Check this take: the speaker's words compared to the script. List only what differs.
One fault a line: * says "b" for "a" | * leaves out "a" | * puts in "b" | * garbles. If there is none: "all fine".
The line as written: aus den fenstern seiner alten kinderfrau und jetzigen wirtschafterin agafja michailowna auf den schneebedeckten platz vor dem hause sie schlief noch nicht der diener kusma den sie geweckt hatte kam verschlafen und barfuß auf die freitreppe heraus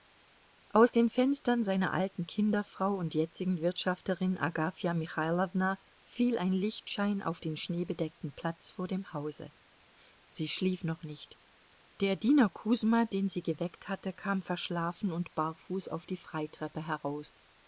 * puts in "fiel ein lichtschein"